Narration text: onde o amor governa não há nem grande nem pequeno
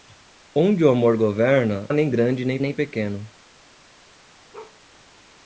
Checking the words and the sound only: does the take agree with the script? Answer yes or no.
no